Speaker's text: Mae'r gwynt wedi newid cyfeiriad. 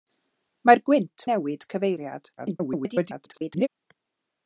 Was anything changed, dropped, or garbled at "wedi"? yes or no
yes